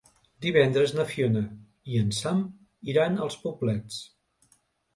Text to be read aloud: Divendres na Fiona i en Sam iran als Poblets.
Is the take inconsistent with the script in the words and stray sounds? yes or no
no